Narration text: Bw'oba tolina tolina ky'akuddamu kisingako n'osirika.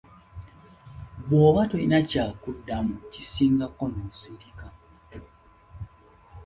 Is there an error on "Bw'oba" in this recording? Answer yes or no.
no